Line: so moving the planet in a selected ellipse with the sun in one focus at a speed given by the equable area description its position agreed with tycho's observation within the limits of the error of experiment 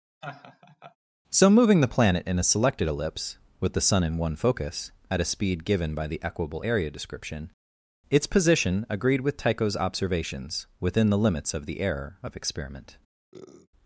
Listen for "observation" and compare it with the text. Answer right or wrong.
wrong